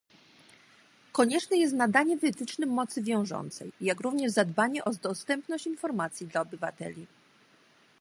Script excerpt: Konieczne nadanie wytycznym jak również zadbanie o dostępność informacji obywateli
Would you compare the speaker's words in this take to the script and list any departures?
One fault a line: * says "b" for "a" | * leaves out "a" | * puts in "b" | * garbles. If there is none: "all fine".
* puts in "jest"
* puts in "mocy wiążącej"
* puts in "dla"